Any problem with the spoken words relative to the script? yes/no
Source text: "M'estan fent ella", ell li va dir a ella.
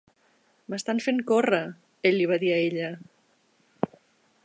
yes